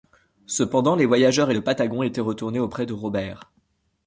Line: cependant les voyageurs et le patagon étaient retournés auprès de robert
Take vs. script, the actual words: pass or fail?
pass